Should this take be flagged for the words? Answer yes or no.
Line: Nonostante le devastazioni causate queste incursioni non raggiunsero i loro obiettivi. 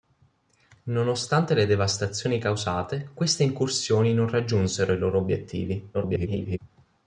yes